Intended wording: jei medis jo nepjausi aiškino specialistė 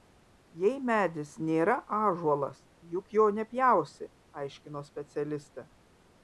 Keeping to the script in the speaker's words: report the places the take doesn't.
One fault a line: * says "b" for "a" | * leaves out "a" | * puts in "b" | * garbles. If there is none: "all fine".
* puts in "nėra ąžuolas juk"